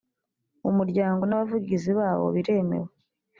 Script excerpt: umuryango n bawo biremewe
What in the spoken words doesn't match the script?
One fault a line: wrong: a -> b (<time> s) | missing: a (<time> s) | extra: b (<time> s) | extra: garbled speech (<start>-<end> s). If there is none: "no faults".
extra: abavugizi (1.3 s)